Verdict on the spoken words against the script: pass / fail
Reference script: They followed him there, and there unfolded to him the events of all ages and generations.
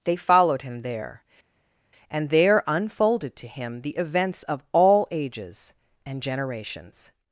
pass